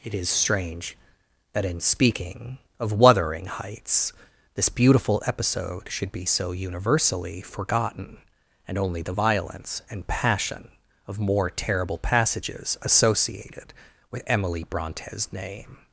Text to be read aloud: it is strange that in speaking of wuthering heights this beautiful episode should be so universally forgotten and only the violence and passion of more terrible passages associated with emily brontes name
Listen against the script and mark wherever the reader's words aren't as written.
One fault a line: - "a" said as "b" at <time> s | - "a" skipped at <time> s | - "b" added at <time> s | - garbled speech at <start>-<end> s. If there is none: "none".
none